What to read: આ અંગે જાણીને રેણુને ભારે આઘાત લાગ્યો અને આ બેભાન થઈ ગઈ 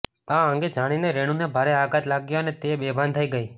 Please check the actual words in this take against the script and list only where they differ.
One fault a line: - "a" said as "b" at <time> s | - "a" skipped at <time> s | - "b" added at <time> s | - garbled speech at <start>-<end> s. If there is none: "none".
- "આ" said as "તે" at 2.6 s